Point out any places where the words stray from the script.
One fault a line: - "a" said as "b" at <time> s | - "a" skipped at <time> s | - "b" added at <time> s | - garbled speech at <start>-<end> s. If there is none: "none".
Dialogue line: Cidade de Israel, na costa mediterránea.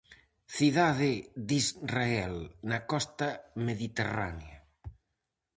none